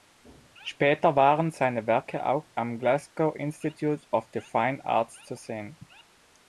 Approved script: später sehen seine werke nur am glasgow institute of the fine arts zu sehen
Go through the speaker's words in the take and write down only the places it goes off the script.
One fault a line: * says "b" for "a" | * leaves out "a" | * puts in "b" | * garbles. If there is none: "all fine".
* says "waren" for "sehen"
* says "auch" for "nur"